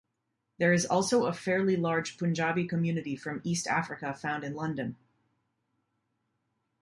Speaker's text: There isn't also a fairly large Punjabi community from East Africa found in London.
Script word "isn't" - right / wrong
wrong